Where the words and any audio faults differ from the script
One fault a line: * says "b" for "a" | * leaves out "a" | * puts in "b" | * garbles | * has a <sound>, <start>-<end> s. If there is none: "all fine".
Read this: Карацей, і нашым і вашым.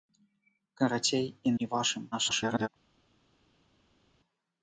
* leaves out "нашым"
* garbles